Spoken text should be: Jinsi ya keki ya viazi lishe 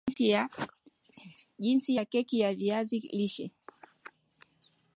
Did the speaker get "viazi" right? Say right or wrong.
right